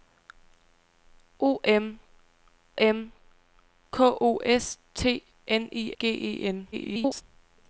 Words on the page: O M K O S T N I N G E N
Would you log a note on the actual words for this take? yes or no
yes